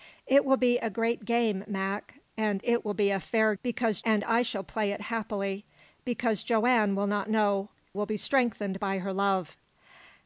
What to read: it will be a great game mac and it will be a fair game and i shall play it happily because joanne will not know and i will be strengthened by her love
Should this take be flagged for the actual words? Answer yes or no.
yes